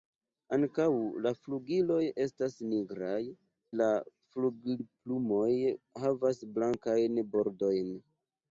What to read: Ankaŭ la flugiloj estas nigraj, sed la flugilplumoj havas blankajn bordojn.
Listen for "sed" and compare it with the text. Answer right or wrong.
wrong